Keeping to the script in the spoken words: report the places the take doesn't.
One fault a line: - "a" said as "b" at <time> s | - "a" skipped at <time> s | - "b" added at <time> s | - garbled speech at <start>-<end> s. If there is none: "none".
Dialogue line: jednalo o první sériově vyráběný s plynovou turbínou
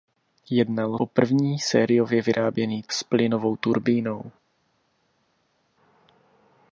none